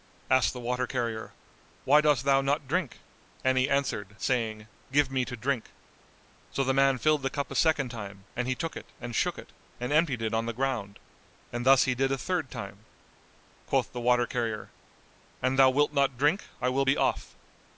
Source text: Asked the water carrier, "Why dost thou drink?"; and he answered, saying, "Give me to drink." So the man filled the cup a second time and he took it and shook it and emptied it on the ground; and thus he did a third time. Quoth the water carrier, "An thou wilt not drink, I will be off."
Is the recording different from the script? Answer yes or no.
yes